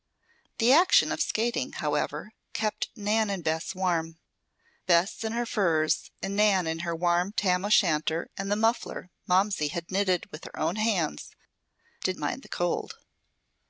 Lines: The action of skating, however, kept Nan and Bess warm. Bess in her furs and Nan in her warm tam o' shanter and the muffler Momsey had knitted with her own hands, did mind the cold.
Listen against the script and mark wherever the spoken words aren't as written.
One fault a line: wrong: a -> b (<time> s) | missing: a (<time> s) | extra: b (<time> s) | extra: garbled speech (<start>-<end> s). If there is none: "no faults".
no faults